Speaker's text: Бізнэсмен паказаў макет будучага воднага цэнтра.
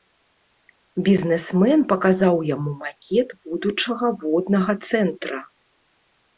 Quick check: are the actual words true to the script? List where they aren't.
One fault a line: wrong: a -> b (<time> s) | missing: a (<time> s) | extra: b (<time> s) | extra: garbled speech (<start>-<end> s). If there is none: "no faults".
extra: яму (2.5 s)